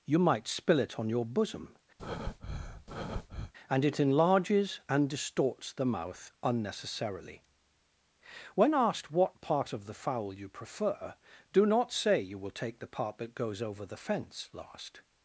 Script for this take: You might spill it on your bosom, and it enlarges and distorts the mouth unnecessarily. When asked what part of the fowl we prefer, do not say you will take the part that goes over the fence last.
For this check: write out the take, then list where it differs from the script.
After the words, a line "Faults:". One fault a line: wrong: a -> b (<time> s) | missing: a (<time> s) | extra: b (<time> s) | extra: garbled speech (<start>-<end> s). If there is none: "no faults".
You might spill it on your bosom, and it enlarges and distorts the mouth unnecessarily. When asked what part of the fowl you prefer, do not say you will take the part that goes over the fence last.
Faults:
wrong: we -> you (10.3 s)